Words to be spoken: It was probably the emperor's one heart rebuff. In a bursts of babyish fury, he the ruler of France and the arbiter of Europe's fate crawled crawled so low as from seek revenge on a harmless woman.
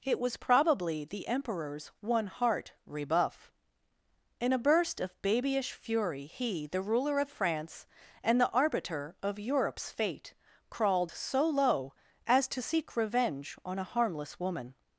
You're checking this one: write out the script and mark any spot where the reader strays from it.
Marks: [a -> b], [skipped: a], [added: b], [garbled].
It was probably the emperor's one heart rebuff. In a [bursts -> burst] of babyish fury, he the ruler of France and the arbiter of Europe's fate crawled [skipped: crawled] so low as [from -> to] seek revenge on a harmless woman.